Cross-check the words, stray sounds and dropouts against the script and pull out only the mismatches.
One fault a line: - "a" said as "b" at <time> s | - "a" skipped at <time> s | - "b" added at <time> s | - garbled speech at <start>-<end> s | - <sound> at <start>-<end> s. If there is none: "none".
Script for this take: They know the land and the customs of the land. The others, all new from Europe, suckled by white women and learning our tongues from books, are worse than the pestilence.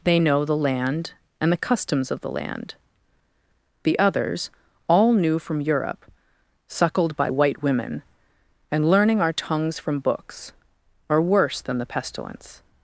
none